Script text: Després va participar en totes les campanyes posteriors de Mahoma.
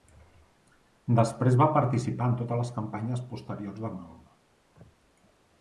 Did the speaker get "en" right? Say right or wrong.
right